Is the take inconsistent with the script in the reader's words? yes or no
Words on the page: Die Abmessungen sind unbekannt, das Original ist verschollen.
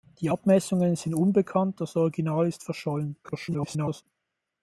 yes